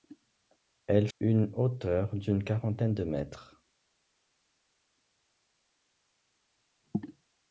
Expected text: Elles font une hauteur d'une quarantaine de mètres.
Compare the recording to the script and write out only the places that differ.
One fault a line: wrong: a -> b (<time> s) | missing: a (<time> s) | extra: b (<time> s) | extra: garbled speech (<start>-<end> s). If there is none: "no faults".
missing: font (1.1 s)